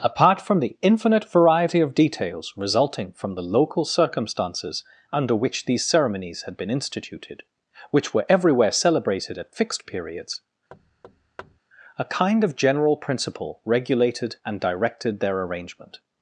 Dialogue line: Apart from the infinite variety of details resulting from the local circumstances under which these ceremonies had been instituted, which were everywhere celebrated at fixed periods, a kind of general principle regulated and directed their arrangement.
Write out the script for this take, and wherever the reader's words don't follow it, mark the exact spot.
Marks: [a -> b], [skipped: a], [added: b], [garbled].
Apart from the infinite variety of details resulting from the local circumstances under which these ceremonies had been instituted, which were everywhere celebrated at fixed periods, a kind of general principle regulated and directed their arrangement.